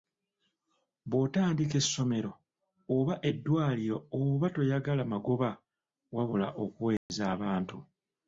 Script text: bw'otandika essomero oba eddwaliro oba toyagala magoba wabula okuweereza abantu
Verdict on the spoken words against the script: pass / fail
pass